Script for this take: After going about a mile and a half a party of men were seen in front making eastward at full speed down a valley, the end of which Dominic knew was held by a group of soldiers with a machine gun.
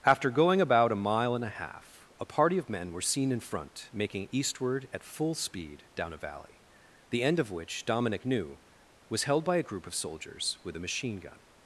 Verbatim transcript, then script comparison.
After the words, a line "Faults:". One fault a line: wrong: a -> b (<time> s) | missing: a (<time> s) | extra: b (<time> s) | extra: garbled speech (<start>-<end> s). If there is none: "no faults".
After going about a mile and a half a party of men were seen in front making eastward at full speed down a valley, the end of which Dominic knew was held by a group of soldiers with a machine gun.
Faults:
no faults